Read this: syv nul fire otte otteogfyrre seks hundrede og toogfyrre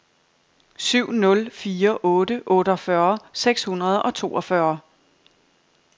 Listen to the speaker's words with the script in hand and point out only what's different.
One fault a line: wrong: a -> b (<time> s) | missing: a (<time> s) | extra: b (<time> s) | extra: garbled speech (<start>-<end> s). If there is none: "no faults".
no faults